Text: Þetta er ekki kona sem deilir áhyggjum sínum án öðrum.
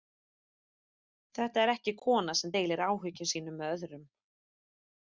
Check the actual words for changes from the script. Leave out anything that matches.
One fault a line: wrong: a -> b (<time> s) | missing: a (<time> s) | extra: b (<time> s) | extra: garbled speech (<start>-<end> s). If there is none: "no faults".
wrong: án -> með (3.6 s)